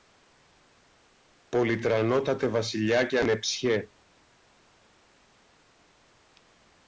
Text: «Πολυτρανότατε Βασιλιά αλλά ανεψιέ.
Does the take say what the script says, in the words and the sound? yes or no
no